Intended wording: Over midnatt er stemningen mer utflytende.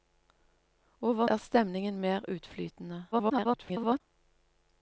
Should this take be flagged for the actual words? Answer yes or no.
yes